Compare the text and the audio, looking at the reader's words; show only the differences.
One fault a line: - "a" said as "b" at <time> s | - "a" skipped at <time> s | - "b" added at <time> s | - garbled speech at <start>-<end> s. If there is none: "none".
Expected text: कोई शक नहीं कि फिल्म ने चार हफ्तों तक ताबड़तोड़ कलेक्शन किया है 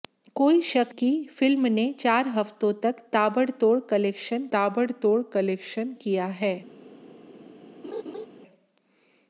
- "नहीं" skipped at 0.9 s
- "ताबड़तोड़ कलेक्शन" added at 4.5 s